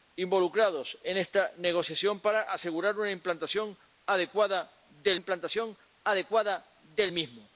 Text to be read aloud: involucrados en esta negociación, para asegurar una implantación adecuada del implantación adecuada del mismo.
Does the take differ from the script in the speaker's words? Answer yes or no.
no